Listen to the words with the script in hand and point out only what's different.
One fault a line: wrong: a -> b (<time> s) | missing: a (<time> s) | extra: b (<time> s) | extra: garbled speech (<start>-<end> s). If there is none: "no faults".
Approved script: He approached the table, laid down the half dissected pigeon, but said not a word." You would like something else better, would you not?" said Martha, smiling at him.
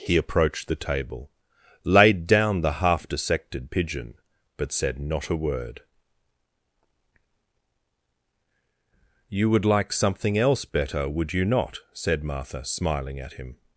no faults